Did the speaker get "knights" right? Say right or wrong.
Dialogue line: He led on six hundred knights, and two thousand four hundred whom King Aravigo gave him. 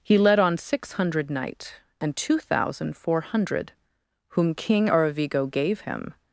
wrong